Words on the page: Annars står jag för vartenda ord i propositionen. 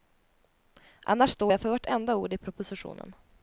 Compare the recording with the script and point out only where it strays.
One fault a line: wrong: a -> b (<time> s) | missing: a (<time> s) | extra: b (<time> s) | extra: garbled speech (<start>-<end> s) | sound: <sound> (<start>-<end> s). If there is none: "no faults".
no faults